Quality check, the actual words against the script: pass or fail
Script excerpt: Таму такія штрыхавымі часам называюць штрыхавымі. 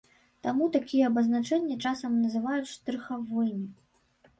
fail